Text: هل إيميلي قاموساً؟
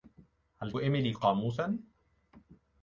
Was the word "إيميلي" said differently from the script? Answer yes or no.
no